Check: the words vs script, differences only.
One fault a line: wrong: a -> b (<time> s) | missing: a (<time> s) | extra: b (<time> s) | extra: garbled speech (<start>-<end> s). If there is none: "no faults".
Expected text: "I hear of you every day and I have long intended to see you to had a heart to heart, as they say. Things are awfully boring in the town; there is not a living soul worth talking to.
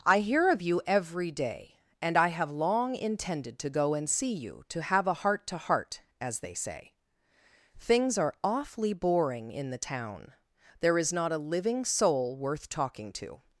extra: go and (3.7 s)
wrong: had -> have (4.8 s)